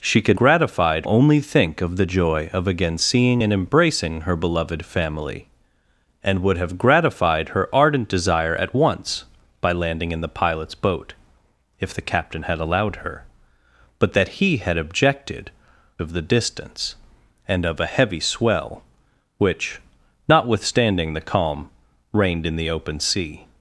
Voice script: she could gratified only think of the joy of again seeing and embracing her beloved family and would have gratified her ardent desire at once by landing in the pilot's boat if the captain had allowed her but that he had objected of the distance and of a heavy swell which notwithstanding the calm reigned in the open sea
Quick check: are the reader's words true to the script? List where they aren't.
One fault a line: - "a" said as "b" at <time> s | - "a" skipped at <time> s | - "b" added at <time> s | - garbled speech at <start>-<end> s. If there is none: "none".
none